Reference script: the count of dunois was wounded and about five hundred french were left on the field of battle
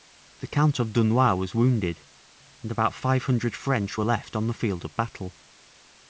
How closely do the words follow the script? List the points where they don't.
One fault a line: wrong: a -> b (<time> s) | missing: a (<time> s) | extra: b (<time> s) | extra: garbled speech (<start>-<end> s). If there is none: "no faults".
no faults